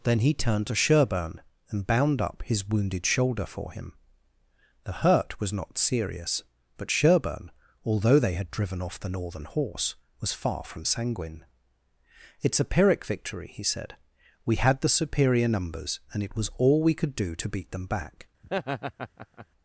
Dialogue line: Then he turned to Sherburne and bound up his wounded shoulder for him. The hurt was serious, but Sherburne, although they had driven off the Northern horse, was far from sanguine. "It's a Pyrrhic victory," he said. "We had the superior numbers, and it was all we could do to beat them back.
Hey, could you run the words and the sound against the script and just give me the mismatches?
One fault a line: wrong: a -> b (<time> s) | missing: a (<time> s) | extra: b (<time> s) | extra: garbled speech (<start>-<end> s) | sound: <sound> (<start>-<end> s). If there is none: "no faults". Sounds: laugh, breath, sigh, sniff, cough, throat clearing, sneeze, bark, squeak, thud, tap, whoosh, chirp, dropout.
extra: not (5.5 s)
sound: laugh (18.4-19.5 s)